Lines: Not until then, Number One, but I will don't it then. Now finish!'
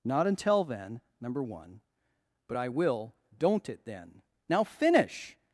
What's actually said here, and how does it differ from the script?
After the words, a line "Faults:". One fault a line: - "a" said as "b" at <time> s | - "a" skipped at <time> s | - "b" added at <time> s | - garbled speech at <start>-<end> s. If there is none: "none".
Not until then, Number One, but I will don't it then. Now finish!'
Faults:
none